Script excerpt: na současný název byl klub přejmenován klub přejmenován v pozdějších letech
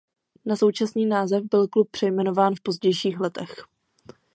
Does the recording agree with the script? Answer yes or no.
no